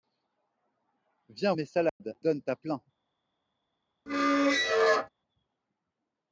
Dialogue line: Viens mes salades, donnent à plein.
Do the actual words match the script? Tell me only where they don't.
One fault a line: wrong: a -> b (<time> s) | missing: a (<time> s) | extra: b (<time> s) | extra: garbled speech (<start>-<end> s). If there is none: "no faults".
no faults